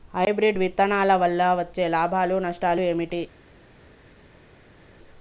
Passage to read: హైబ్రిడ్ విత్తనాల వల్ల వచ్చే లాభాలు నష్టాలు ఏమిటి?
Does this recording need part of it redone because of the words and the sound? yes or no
no